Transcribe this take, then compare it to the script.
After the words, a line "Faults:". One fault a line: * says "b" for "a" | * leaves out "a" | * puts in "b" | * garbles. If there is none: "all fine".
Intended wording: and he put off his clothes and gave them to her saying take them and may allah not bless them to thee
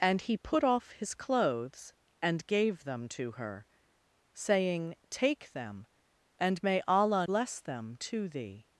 and he put off his clothes and gave them to her saying take them and may allah bless them to thee
Faults:
* leaves out "not"